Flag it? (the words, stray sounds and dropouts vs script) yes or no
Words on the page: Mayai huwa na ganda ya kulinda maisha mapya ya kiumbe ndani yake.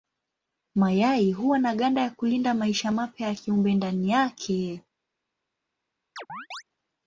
yes